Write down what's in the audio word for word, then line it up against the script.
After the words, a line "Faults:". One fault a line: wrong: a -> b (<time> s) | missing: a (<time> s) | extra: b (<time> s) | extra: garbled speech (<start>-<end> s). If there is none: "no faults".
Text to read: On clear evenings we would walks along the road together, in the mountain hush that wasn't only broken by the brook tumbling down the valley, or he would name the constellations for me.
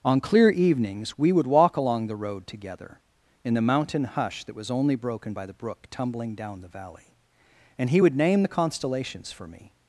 On clear evenings we would walk along the road together, in the mountain hush that was only broken by the brook tumbling down the valley, and he would name the constellations for me.
Faults:
wrong: walks -> walk (1.4 s)
wrong: wasn't -> was (4.5 s)
wrong: or -> and (7.8 s)